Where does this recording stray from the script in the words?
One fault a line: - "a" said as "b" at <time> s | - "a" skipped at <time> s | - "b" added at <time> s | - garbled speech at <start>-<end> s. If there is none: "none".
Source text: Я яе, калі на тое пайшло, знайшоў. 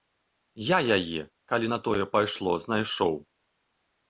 none